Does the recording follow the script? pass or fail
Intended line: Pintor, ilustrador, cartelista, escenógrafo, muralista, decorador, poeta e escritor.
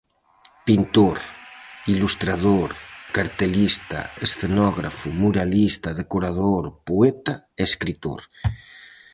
pass